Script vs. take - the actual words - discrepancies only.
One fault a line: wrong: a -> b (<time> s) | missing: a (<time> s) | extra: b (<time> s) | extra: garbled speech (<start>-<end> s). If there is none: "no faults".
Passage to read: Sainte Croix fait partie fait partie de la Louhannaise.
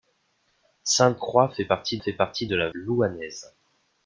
no faults